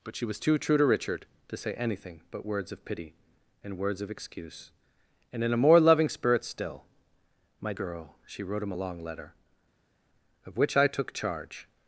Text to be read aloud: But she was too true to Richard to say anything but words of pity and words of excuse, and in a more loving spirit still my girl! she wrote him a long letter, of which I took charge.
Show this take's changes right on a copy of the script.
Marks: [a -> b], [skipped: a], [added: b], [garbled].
But she was too true to Richard to say anything but words of pity and words of excuse, and in a more loving spirit still my girl! she wrote him a long letter, of which I took charge.